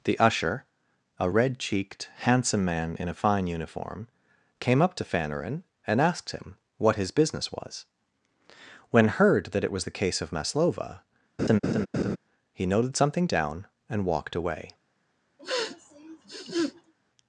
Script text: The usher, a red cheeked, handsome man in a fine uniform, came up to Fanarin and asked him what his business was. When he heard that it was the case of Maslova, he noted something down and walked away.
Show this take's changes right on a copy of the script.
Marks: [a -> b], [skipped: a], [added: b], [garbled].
The usher, a red cheeked, handsome man in a fine uniform, came up to Fanarin and asked him what his business was. When [skipped: he] heard that it was the case of Maslova, he noted something down and walked away.